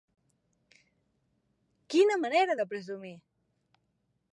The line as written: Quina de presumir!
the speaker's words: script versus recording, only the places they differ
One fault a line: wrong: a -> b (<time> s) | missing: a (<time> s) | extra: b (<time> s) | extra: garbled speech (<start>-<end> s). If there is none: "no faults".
extra: manera (2.2 s)